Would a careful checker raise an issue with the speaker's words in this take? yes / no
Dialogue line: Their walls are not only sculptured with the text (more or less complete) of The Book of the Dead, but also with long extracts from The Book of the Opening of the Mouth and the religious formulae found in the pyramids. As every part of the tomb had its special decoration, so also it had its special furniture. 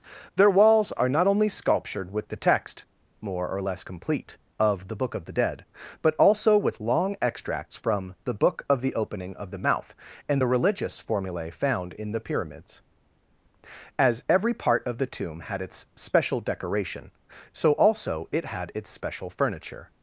no